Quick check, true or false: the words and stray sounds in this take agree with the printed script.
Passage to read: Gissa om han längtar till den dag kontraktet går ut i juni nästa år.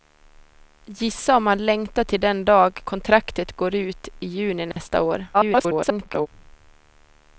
false